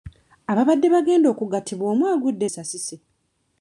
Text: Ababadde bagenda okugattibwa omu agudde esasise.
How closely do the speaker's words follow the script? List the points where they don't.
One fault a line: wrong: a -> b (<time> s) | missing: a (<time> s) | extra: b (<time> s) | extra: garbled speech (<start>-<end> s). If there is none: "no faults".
no faults